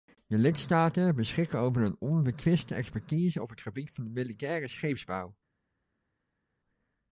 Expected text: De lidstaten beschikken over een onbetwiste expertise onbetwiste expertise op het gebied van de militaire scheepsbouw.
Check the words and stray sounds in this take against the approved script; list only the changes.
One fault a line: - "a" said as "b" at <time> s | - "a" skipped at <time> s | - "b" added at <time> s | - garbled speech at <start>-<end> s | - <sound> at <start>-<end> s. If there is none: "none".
- "onbetwiste expertise" skipped at 3.4 s